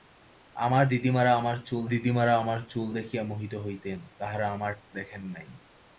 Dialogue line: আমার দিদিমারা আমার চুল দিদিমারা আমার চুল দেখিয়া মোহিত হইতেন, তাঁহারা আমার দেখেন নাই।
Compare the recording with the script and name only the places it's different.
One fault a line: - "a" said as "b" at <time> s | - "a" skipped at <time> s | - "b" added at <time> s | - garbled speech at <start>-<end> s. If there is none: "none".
none